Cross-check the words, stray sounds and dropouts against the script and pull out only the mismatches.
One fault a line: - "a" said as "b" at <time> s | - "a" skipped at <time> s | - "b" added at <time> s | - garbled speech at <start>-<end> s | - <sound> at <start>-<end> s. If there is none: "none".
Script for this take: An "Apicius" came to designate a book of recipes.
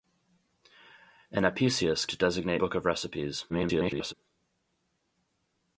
- "came" skipped at 2.1 s
- "a" skipped at 2.6 s
- garbled speech at 3.5-4.1 s